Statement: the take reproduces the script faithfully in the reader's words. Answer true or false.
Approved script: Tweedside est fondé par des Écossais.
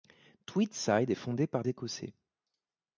false